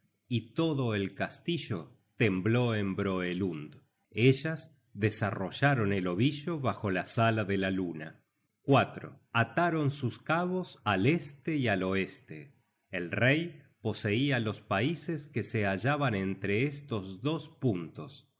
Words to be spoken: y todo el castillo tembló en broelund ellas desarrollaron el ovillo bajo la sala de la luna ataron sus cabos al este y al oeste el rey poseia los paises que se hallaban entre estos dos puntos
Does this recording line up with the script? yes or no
yes